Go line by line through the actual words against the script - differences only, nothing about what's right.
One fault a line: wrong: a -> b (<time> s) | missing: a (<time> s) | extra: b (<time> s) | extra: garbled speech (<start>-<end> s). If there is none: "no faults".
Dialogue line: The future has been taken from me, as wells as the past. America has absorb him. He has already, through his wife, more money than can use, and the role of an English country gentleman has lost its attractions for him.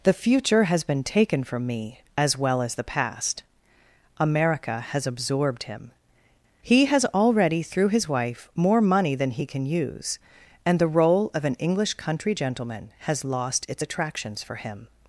wrong: wells -> well (2.4 s)
wrong: absorb -> absorbed (5.0 s)
extra: he (9.3 s)